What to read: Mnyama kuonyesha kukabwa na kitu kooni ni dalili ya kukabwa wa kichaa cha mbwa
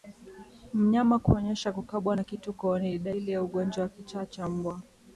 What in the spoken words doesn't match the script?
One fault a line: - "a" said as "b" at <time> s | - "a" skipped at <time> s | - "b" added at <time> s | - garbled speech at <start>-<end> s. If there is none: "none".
- "kukabwa" said as "ugonjwa" at 3.4 s